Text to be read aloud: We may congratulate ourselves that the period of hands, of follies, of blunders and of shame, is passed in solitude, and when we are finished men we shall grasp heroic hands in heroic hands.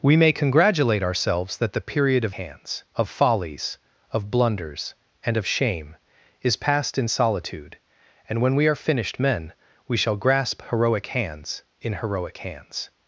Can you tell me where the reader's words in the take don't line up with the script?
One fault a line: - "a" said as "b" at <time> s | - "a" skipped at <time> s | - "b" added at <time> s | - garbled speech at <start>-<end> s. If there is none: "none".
none